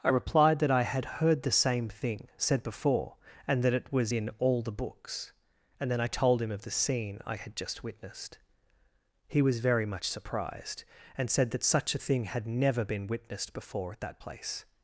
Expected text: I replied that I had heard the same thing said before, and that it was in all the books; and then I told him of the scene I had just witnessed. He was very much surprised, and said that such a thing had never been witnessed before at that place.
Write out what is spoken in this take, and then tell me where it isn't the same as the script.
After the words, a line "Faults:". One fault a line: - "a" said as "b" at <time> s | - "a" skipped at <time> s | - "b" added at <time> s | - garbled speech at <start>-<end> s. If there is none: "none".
I replied that I had heard the same thing said before, and that it was in all the books; and then I told him of the scene I had just witnessed. He was very much surprised, and said that such a thing had never been witnessed before at that place.
Faults:
none